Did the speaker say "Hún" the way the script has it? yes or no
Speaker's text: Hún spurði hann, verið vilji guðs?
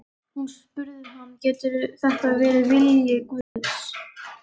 yes